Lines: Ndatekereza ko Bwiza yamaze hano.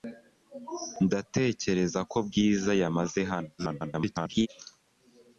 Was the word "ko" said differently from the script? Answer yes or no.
no